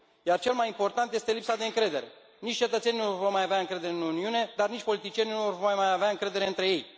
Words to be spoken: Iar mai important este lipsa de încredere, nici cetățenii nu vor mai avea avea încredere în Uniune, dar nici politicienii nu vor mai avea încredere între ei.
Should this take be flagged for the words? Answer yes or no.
yes